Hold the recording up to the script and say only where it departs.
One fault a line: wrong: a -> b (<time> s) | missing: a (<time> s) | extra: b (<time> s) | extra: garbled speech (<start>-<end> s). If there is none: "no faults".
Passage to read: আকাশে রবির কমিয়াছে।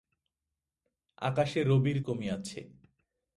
no faults